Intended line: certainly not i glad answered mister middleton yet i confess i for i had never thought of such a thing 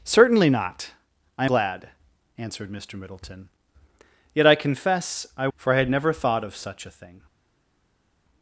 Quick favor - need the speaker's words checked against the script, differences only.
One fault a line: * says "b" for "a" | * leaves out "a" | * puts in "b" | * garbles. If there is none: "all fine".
all fine